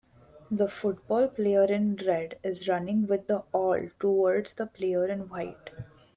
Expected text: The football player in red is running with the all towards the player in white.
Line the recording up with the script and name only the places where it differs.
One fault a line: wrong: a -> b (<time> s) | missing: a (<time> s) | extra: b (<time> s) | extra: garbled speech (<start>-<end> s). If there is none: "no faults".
no faults